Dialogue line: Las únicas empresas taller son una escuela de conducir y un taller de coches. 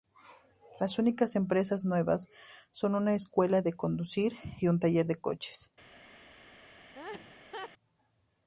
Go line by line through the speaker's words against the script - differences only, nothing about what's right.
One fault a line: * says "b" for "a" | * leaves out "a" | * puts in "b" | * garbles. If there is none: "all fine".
* says "nuevas" for "taller"